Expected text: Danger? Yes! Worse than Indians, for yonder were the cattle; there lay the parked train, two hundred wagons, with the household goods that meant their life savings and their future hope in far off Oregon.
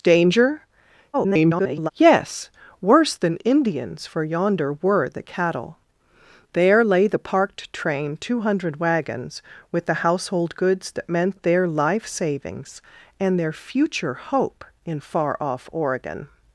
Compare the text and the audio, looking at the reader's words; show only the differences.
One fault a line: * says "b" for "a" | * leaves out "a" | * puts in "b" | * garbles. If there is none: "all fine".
* garbles